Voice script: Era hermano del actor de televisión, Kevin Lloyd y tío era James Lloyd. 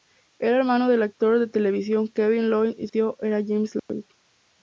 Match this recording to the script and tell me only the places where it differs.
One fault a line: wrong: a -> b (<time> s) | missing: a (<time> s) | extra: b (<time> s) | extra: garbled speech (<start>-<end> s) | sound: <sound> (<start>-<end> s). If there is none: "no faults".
sound: dropout (3.8-3.9 s)